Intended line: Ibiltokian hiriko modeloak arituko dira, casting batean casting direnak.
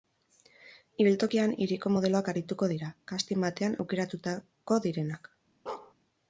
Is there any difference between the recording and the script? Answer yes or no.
yes